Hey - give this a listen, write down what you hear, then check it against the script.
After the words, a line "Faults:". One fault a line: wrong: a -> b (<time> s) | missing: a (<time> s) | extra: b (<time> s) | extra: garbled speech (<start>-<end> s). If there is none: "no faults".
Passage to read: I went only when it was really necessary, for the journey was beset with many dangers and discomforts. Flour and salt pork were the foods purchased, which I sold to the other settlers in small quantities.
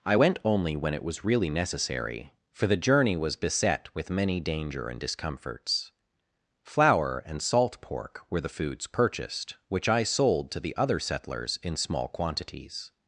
I went only when it was really necessary, for the journey was beset with many danger and discomforts. Flour and salt pork were the foods purchased, which I sold to the other settlers in small quantities.
Faults:
wrong: dangers -> danger (4.4 s)